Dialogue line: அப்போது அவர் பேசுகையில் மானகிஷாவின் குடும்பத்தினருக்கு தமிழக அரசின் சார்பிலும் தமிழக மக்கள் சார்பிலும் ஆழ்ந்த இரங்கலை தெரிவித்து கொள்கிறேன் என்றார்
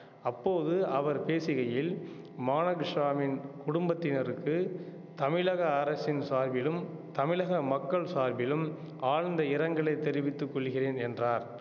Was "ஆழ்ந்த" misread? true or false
false